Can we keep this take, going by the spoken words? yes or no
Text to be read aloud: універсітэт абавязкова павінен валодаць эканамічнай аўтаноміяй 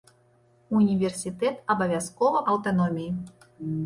no